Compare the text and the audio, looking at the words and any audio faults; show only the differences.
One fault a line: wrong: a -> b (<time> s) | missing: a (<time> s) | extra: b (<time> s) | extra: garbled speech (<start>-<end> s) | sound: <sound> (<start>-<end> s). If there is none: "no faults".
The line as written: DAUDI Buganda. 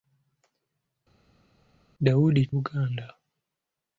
no faults